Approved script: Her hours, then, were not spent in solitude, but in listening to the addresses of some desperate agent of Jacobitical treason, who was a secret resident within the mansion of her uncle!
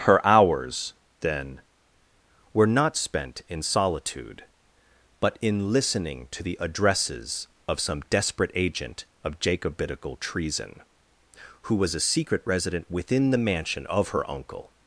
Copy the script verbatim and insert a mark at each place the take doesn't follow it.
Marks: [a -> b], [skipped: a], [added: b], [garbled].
Her hours, then, were not spent in solitude, but in listening to the addresses of some desperate agent of Jacobitical treason, who was a secret resident within the mansion of her uncle!